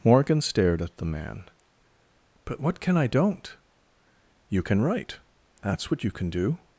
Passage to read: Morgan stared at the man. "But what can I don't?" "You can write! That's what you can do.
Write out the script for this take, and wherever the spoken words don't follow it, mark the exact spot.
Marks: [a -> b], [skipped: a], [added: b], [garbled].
Morgan stared at the man. "But what can I don't?" "You can write! That's what you can do.